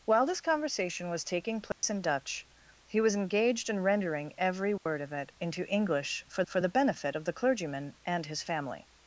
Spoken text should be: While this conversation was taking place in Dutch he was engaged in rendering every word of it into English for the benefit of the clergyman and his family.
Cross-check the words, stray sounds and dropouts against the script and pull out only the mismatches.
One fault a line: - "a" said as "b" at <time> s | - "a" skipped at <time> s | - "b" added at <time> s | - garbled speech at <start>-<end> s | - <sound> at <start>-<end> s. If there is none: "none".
- dropout at 1.7-1.8 s
- dropout at 4.8-4.9 s
- "for" added at 6.4 s